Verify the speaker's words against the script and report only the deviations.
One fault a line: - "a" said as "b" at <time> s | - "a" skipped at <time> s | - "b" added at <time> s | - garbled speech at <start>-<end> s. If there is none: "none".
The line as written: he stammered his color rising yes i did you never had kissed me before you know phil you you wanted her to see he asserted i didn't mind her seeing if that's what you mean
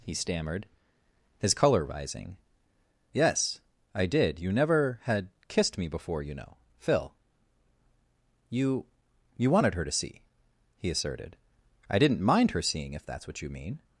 none